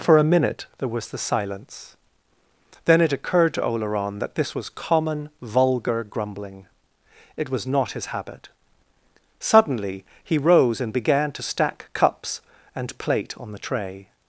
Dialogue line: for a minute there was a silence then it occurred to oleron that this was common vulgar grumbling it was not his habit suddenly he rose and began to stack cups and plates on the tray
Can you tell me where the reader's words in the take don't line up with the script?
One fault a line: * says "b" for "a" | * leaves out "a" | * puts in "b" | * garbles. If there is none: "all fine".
* says "the" for "a"
* says "plate" for "plates"